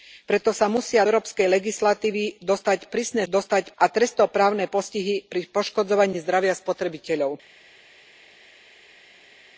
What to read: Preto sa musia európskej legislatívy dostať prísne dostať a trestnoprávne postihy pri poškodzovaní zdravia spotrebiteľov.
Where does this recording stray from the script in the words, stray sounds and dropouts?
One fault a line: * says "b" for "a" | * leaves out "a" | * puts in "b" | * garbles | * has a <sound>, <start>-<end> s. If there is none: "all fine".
all fine